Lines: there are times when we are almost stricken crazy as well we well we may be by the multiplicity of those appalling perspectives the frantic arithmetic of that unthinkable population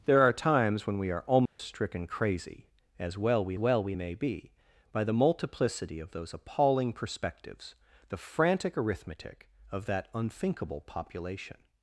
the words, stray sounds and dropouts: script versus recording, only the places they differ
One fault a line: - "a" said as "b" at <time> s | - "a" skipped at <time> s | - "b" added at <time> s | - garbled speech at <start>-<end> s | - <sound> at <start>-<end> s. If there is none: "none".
- dropout at 1.5-1.6 s